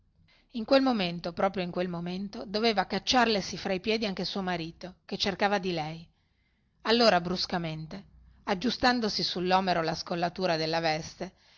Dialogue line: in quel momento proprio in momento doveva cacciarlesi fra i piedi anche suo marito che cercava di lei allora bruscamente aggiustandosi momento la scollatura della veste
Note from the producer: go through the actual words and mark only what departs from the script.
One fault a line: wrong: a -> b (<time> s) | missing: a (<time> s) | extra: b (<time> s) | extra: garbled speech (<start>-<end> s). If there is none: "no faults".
extra: quel (1.7 s)
wrong: momento -> sullomero (9.2 s)